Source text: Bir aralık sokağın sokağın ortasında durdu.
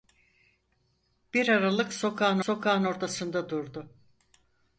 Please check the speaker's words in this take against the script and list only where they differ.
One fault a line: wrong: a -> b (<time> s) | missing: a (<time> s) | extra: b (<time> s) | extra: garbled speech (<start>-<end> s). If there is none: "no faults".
no faults